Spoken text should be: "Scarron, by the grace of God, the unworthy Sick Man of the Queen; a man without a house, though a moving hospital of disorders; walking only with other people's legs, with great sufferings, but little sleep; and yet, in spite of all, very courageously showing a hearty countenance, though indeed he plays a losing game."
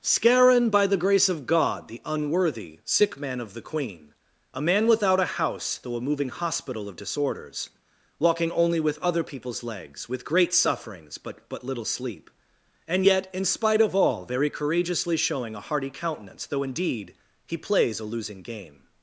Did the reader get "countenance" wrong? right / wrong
right